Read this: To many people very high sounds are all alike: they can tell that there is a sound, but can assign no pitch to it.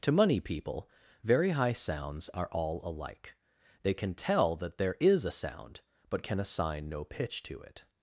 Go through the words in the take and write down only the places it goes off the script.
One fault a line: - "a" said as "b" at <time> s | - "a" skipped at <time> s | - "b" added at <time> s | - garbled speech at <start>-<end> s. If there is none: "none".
- "many" said as "money" at 0.1 s